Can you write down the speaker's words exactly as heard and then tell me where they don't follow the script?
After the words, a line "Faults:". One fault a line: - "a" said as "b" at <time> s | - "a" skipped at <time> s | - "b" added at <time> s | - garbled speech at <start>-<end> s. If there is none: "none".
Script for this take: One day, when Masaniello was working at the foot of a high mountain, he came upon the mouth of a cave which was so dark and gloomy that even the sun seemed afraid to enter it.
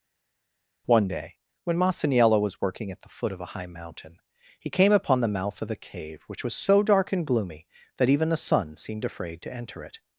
One day, when Masaniello was working at the foot of a high mountain, he came upon the mouth of a cave which was so dark and gloomy that even the sun seemed afraid to enter it.
Faults:
none